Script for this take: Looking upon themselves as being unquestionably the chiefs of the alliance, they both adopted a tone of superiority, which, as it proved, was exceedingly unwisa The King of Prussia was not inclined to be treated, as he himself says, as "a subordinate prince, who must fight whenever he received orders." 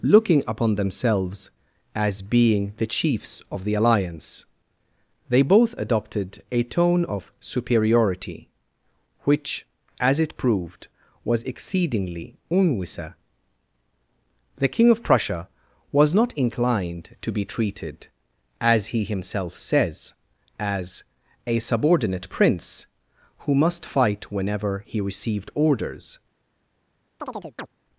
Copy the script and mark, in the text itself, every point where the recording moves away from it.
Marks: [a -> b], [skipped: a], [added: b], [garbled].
Looking upon themselves as being [skipped: unquestionably] the chiefs of the alliance, they both adopted a tone of superiority, which, as it proved, was exceedingly unwisa The King of Prussia was not inclined to be treated, as he himself says, as "a subordinate prince, who must fight whenever he received orders."